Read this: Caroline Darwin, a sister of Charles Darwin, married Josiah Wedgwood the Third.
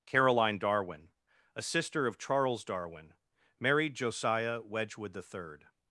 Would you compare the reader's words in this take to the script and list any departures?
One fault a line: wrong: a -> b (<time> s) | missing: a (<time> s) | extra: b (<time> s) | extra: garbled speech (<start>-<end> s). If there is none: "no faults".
no faults